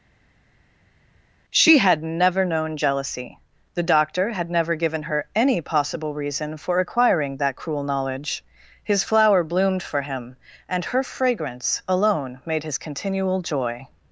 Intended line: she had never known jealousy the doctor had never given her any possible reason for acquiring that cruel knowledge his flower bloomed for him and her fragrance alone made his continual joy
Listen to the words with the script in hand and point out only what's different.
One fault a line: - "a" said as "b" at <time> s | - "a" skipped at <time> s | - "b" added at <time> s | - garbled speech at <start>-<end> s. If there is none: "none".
none